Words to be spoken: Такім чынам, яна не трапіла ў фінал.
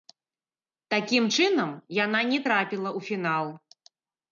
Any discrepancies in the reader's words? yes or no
no